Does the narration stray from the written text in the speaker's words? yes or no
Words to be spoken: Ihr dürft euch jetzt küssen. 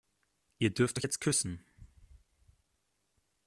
no